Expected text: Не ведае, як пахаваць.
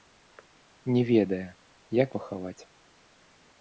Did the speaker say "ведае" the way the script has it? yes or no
yes